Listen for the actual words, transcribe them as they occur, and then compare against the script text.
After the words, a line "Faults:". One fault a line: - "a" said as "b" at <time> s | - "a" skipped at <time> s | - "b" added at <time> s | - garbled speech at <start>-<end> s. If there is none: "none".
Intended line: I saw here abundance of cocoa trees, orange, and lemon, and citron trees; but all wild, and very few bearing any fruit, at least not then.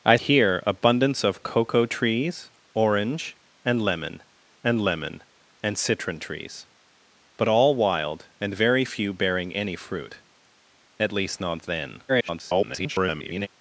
I here abundance of cocoa trees, orange, and lemon and lemon, and citron trees; but all wild, and very few bearing any fruit, at least not then. [garbled]
Faults:
- "saw" skipped at 0.1 s
- "lemon and" added at 4.8 s
- garbled speech at 12.1-13.5 s